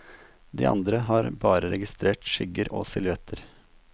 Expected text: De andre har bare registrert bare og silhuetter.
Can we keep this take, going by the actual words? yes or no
no